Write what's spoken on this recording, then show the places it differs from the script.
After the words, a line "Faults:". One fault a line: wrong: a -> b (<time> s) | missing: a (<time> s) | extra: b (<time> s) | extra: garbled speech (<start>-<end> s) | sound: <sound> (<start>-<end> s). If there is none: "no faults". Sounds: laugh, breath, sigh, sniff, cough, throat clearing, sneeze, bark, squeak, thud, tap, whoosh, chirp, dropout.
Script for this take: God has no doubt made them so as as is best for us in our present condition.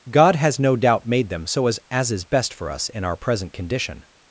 God has no doubt made them so as as is best for us in our present condition.
Faults:
no faults